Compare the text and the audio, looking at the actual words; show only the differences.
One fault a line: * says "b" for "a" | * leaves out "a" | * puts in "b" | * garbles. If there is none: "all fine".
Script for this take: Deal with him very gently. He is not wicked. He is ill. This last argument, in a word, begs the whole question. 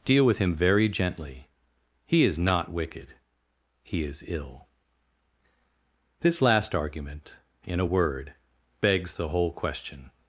all fine